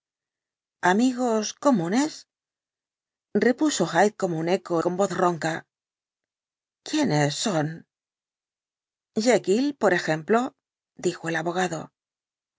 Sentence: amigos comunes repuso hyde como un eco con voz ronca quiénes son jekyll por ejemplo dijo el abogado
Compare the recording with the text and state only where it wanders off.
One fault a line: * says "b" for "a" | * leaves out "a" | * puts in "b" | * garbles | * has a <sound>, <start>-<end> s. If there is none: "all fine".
all fine